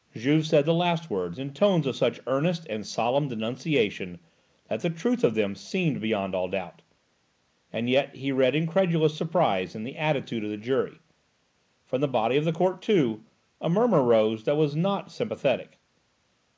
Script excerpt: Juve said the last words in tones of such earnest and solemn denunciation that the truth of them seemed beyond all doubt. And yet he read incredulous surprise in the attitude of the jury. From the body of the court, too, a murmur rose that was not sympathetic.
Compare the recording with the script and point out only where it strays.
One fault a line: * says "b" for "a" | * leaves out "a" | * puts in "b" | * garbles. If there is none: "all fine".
all fine